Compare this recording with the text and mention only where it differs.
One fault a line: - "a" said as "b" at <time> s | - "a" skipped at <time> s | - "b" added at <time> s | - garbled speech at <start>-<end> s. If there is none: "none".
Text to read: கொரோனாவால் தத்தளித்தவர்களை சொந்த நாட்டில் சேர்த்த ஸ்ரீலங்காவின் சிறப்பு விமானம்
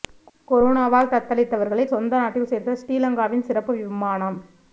none